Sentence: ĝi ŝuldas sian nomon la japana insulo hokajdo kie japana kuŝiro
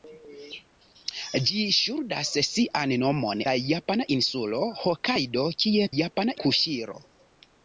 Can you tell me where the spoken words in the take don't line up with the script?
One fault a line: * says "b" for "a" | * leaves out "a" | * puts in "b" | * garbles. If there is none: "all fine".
all fine